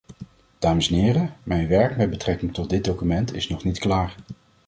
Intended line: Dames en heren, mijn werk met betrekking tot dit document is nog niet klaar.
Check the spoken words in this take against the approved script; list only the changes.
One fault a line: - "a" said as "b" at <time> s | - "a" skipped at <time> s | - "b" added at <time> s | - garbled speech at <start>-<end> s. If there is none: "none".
none